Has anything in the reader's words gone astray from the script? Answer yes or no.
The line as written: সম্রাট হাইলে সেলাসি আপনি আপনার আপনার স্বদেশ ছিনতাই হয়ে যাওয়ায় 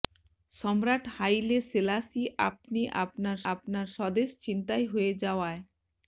no